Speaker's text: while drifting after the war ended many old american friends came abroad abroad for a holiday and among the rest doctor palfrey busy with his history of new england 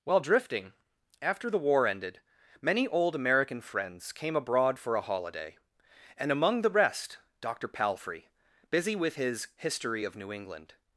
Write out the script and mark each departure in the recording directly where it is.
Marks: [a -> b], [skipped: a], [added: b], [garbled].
while drifting after the war ended many old american friends came abroad [skipped: abroad] for a holiday and among the rest doctor palfrey busy with his history of new england